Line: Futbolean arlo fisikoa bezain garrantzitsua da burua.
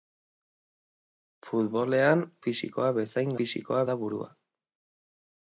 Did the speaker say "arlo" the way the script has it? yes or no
no